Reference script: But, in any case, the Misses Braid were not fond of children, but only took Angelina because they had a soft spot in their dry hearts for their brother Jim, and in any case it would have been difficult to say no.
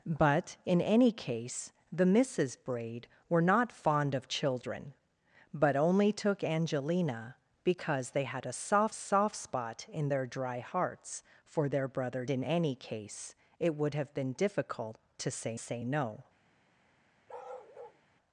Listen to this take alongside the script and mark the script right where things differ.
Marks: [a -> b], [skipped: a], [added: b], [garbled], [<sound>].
But, in any case, the Misses Braid were not fond of children, but only took Angelina because they had a soft [added: soft] spot in their dry hearts for their brother [skipped: Jim, and] in any case it would have been difficult to say [added: say] no. [bark]